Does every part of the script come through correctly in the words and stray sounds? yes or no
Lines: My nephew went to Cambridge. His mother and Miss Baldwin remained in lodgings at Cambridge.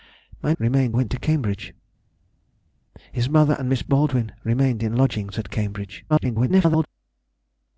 no